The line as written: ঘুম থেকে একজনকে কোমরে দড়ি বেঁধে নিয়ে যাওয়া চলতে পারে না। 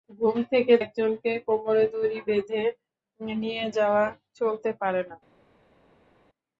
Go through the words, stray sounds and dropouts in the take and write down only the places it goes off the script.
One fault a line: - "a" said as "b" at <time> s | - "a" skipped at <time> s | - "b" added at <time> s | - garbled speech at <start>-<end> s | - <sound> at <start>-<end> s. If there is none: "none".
none